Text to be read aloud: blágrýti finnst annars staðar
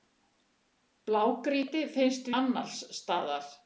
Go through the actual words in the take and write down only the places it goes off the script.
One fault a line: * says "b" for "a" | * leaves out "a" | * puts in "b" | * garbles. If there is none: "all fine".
all fine